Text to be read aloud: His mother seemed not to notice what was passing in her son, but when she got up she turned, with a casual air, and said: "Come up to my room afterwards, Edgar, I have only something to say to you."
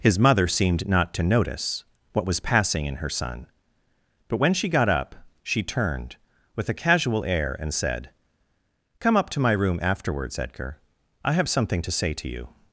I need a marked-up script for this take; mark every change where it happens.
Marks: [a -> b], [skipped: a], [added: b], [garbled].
His mother seemed not to notice what was passing in her son, but when she got up she turned, with a casual air, and said: "Come up to my room afterwards, Edgar, I have [skipped: only] something to say to you."